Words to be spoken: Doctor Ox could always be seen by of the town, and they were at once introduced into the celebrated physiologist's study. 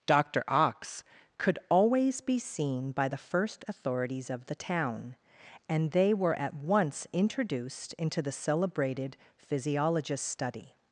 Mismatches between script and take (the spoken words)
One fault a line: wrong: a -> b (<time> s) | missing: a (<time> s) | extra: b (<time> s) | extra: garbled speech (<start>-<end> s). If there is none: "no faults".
extra: the first authorities (3.1 s)